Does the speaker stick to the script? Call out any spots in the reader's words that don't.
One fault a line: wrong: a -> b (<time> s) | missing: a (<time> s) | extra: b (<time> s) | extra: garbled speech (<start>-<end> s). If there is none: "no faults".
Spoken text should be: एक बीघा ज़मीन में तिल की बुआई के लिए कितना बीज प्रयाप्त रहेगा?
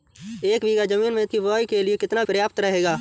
missing: तिल (1.2 s)
missing: बीज (2.2 s)